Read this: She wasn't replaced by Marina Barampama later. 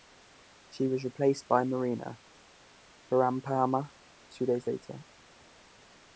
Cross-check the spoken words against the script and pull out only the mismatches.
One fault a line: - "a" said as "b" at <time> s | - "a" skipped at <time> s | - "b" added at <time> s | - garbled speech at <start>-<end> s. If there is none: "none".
- "wasn't" said as "was" at 0.9 s
- "two days" added at 4.3 s